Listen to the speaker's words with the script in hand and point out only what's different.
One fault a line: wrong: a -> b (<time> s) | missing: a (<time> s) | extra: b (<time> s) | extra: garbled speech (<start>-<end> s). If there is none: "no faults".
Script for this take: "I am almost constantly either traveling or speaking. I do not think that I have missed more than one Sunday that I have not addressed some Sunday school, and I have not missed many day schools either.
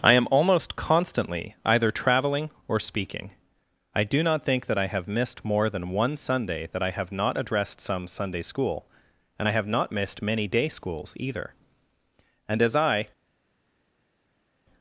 extra: And as I (12.5 s)